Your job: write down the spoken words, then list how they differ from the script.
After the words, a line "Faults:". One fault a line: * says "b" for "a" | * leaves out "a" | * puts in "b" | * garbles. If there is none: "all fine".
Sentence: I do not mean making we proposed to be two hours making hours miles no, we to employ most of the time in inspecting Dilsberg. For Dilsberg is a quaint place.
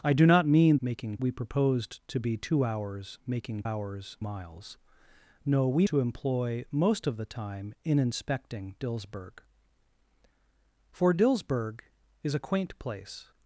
I do not mean making we proposed to be two hours making hours miles no, we to employ most of the time in inspecting Dilsberg. For Dilsberg is a quaint place.
Faults:
all fine